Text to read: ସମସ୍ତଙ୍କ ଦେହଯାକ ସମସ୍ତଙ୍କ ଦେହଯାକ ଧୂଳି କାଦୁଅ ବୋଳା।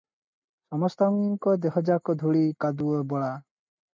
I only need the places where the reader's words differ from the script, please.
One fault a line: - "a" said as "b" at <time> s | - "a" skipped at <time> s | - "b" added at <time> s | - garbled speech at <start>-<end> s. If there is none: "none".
- "ସମସ୍ତଙ୍କ ଦେହଯାକ" skipped at 2.1 s